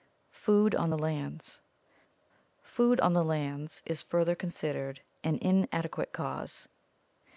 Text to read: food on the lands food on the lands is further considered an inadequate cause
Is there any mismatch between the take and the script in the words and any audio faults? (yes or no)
no